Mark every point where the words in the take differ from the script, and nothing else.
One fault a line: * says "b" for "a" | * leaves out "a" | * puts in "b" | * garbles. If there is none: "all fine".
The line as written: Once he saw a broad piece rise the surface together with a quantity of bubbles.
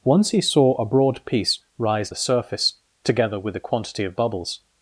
all fine